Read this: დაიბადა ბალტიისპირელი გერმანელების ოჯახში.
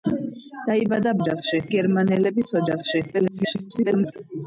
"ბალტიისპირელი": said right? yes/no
no